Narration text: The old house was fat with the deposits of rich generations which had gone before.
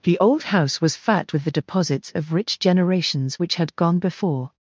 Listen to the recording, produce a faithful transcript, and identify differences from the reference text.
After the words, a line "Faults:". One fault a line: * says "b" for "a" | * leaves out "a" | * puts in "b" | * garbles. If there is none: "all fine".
The old house was fat with the deposits of rich generations which had gone before.
Faults:
all fine